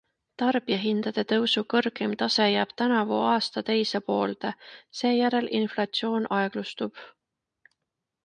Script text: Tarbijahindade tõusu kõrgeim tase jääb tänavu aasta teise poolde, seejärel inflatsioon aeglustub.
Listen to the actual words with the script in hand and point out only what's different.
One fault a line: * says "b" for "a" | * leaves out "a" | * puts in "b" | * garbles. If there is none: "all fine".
all fine